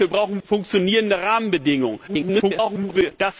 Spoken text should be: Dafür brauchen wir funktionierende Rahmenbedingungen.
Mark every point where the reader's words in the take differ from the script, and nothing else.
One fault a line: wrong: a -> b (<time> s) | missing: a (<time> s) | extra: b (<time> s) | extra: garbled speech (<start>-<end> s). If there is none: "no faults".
missing: wir (0.4 s)
extra: garbled speech (2.1-3.1 s)